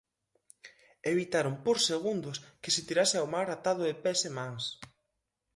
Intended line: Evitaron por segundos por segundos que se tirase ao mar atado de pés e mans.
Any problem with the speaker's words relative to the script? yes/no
yes